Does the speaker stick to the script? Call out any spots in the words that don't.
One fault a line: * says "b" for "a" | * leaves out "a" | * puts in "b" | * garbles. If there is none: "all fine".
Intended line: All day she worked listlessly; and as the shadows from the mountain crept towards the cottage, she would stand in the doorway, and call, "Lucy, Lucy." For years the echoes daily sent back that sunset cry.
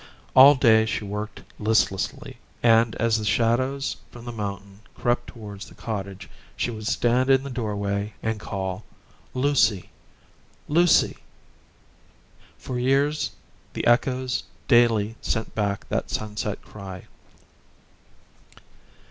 all fine